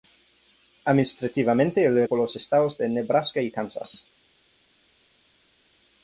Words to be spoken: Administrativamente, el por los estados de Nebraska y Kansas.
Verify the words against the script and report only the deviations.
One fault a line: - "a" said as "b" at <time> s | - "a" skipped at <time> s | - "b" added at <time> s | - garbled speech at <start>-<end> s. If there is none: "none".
none